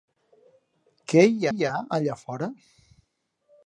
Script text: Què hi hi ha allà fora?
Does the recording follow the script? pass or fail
pass